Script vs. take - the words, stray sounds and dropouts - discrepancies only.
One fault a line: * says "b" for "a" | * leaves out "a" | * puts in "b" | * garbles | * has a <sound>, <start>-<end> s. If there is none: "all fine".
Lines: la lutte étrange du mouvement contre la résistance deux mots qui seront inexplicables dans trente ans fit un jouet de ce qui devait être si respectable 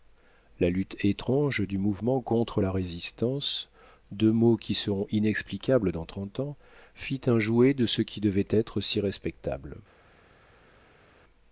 all fine